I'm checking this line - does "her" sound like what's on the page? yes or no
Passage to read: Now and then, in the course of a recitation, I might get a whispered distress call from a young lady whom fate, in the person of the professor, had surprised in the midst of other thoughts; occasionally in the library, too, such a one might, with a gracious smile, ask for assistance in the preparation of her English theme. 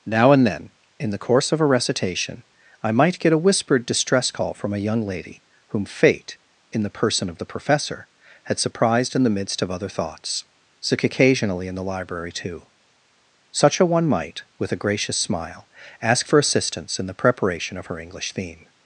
yes